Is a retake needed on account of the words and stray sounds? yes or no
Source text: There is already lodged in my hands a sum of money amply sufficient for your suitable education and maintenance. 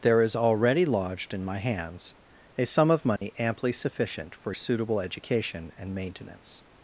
yes